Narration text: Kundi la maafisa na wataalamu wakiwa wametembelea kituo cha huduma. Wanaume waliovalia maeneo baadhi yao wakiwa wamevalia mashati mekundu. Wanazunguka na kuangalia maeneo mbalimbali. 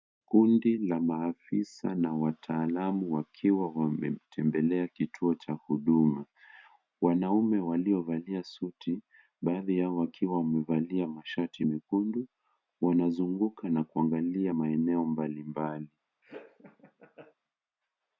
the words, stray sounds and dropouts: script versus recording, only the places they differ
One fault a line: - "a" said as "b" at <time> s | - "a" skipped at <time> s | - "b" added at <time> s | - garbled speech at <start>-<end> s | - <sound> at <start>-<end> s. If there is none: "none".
- "maeneo" said as "suti" at 8.4 s
- laugh at 16.2-17.3 s